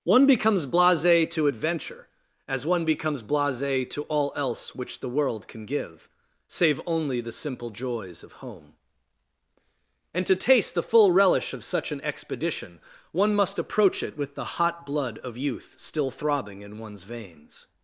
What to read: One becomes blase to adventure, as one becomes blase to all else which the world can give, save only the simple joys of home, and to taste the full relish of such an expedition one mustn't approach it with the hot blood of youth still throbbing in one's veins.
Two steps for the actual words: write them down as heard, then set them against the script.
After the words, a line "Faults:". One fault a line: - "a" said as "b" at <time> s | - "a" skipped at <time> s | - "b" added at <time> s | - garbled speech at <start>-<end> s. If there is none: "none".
One becomes blase to adventure, as one becomes blase to all else which the world can give, save only the simple joys of home, and to taste the full relish of such an expedition one must approach it with the hot blood of youth still throbbing in one's veins.
Faults:
- "mustn't" said as "must" at 13.4 s